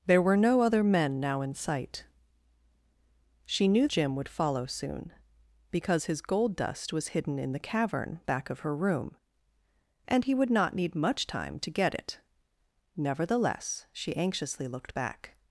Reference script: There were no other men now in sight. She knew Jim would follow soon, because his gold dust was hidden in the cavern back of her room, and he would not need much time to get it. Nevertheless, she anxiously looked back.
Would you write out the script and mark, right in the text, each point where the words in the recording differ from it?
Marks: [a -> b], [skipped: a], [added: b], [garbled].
There were no other men now in sight. She knew Jim would follow soon, because his gold dust was hidden in the cavern back of her room, and he would not need much time to get it. Nevertheless, she anxiously looked back.